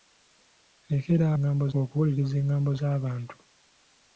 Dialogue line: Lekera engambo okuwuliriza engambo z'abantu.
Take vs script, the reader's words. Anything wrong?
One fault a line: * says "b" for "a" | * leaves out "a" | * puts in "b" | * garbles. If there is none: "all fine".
all fine